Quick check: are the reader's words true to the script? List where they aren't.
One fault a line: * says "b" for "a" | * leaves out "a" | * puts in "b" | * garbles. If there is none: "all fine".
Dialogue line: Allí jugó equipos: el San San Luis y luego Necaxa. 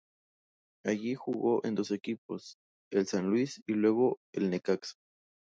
* puts in "en dos"
* leaves out "San"
* puts in "el"